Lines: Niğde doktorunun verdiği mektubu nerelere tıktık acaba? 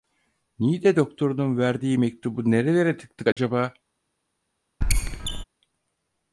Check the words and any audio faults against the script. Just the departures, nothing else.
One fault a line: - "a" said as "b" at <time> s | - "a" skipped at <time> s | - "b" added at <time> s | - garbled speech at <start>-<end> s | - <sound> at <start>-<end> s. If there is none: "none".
- dropout at 3.3-3.4 s
- squeak at 4.8-5.4 s